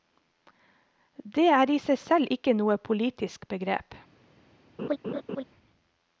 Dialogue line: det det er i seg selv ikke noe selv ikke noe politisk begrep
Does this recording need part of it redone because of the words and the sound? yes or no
yes